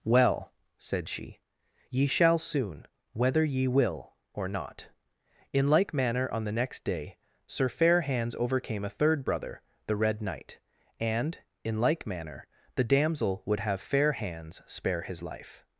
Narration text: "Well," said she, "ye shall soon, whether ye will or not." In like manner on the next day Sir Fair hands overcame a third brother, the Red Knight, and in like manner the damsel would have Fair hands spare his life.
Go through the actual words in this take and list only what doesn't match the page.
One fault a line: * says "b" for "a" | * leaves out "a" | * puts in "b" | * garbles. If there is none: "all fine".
all fine